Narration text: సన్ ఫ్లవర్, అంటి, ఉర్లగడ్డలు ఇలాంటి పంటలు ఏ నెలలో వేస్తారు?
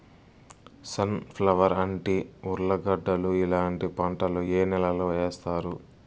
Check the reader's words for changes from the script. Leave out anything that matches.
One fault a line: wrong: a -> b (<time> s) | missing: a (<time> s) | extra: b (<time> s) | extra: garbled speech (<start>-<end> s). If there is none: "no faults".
no faults